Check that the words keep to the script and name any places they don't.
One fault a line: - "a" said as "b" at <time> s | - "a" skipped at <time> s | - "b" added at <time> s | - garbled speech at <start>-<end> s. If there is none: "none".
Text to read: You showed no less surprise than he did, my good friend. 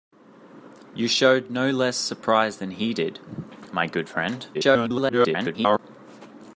- garbled speech at 4.5-5.8 s